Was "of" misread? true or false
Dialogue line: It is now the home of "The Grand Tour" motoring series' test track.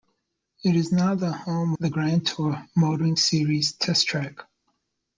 true